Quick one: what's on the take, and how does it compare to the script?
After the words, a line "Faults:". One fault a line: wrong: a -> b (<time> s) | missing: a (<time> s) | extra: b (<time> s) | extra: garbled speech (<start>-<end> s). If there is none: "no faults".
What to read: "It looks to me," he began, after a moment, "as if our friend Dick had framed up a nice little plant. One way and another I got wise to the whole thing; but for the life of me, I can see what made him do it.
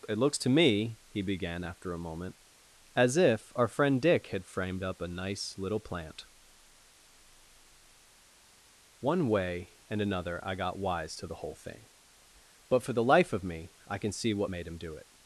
"It looks to me," he began, after a moment, "as if our friend Dick had framed up a nice little plant. One way and another I got wise to the whole thing; but for the life of me, I can see what made him do it.
Faults:
no faults